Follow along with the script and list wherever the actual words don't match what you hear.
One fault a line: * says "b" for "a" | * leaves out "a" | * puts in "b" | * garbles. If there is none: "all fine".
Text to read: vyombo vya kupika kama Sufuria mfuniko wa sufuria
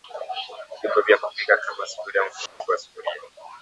all fine